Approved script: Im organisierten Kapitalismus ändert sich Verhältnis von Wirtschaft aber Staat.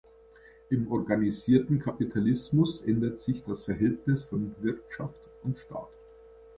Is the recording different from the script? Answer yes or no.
yes